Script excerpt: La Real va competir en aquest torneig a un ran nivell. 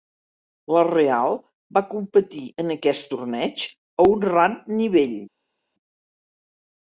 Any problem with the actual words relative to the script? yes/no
no